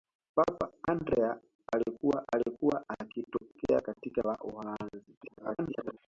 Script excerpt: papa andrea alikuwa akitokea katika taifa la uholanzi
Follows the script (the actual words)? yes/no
no